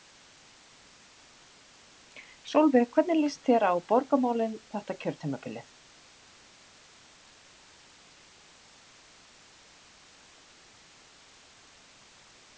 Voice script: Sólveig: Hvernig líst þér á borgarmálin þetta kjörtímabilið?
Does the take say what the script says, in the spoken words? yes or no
yes